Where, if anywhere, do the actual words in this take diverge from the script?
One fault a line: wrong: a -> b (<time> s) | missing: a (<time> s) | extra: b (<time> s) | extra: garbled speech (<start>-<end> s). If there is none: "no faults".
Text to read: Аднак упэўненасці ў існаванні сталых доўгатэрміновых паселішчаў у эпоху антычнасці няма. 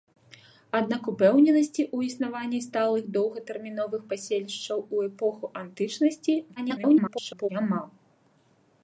extra: garbled speech (6.6-7.5 s)